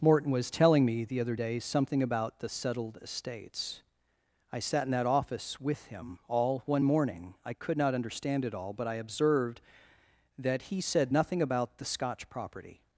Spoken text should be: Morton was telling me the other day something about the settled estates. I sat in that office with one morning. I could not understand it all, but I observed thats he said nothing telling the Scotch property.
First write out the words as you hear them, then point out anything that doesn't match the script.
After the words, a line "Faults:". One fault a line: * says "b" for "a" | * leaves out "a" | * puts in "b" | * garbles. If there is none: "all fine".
Morton was telling me the other day something about the settled estates. I sat in that office with him all one morning. I could not understand it all, but I observed that he said nothing about the Scotch property.
Faults:
* puts in "him all"
* says "that" for "thats"
* says "about" for "telling"